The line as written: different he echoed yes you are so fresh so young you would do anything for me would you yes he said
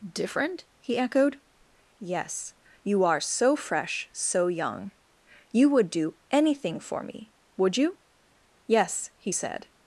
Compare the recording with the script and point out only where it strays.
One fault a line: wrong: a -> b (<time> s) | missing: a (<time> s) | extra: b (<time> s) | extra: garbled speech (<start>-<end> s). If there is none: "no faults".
no faults